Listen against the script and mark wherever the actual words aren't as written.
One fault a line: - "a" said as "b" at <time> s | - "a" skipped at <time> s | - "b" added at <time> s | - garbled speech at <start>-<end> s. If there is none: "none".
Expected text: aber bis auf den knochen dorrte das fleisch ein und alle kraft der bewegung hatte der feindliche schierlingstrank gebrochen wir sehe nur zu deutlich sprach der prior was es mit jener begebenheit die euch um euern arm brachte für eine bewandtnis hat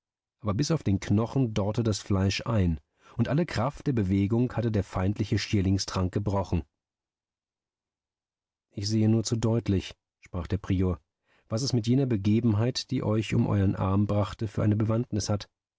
- "wir" said as "ich" at 8.7 s